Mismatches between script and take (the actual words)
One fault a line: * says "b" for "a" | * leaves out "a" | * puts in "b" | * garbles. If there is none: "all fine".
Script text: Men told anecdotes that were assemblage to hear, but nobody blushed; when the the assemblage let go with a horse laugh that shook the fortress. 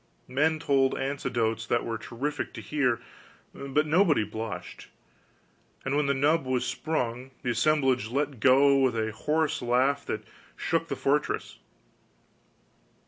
* says "terrific" for "assemblage"
* puts in "and"
* puts in "nub was sprung"